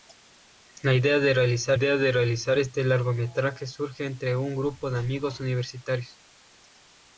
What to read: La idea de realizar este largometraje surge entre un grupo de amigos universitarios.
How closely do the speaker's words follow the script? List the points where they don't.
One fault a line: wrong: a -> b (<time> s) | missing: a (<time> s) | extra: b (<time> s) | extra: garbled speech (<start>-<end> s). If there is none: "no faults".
extra: idea de realizar (1.7 s)